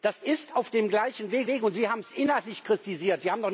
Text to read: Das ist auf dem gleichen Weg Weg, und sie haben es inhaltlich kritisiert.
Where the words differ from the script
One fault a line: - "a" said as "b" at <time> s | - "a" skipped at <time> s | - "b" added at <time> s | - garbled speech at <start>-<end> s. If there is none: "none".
none